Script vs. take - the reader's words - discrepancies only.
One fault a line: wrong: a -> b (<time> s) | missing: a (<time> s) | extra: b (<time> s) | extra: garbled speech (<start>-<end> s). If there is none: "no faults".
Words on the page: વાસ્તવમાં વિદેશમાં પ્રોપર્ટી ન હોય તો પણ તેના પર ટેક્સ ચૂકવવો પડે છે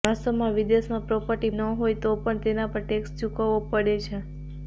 no faults